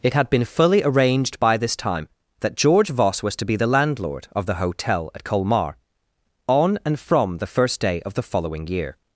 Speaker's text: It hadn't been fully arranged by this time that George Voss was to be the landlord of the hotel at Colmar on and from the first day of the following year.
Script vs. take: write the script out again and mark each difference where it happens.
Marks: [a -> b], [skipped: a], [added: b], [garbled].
It [hadn't -> had] been fully arranged by this time that George Voss was to be the landlord of the hotel at Colmar on and from the first day of the following year.